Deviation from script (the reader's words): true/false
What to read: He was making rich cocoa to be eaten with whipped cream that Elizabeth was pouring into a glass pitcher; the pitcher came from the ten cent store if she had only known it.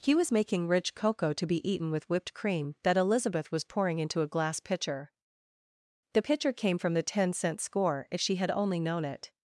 true